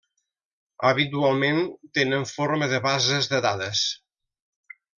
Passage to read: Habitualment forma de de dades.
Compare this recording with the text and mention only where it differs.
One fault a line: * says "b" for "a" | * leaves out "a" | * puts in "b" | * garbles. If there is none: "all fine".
* puts in "tenen"
* puts in "bases"